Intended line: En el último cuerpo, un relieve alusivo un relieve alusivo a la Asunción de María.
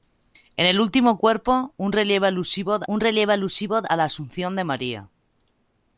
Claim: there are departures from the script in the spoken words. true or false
false